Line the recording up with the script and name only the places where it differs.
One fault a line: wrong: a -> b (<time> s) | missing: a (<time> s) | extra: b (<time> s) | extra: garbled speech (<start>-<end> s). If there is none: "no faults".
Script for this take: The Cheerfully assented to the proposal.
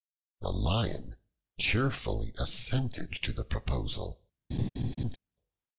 extra: Lion (0.5 s)